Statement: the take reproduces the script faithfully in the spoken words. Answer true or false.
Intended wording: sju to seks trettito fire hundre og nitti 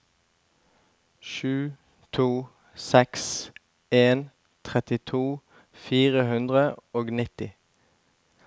false